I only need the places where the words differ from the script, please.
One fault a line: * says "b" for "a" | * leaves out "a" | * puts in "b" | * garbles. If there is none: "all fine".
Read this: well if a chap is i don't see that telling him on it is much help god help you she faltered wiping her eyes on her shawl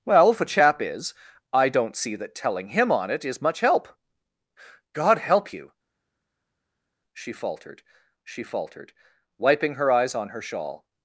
* puts in "she faltered"